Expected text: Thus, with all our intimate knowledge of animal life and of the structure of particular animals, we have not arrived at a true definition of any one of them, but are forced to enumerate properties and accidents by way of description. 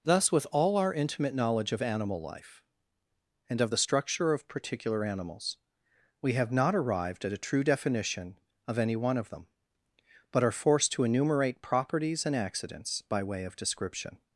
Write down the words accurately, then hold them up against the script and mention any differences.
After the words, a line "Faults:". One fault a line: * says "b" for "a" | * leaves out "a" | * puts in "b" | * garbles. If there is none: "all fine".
Thus, with all our intimate knowledge of animal life and of the structure of particular animals, we have not arrived at a true definition of any one of them, but are forced to enumerate properties and accidents by way of description.
Faults:
all fine